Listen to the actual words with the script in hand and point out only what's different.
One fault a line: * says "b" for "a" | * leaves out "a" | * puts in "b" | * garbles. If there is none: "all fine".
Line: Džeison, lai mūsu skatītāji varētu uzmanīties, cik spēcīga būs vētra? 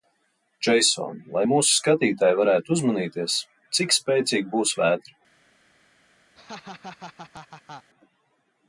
all fine